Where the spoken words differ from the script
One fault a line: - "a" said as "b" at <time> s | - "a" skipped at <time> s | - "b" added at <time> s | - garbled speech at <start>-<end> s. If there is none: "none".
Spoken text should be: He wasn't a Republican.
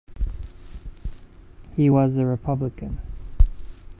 - "wasn't" said as "was" at 1.9 s